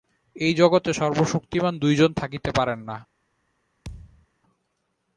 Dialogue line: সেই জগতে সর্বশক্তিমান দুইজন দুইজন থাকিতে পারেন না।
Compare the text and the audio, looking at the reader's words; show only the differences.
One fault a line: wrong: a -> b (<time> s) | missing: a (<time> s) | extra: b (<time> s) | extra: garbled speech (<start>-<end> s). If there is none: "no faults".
wrong: সেই -> এই (0.3 s)
missing: দুইজন (2.1 s)